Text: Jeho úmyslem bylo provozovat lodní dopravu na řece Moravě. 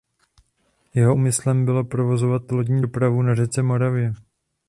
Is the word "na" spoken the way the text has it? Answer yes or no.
yes